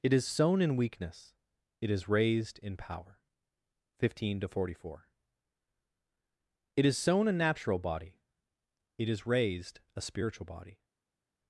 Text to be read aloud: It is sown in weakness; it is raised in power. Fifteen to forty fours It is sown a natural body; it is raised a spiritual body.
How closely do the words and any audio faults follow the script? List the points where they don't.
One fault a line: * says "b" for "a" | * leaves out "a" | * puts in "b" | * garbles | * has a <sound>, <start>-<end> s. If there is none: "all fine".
* says "four" for "fours"